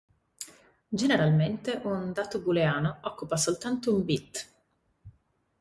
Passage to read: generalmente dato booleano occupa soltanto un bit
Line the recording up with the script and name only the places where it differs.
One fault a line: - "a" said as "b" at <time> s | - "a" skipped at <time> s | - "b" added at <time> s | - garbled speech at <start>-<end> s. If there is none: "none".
- "un" added at 1.8 s